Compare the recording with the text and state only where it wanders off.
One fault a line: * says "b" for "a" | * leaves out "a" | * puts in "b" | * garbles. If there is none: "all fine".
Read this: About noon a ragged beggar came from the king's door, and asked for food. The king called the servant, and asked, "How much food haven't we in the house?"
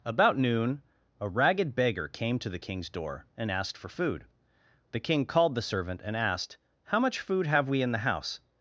* says "to" for "from"
* says "have" for "haven't"